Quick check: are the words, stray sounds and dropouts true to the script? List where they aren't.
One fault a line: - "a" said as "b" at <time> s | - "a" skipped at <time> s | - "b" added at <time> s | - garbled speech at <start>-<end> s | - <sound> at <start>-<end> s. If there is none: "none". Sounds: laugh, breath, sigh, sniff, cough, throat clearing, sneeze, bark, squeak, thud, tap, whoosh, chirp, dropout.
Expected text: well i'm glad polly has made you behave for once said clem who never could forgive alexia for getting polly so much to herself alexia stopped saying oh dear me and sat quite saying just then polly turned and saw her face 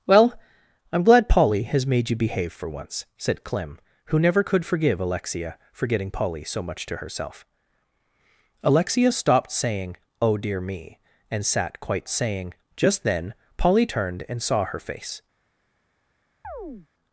- chirp at 16.4-16.9 s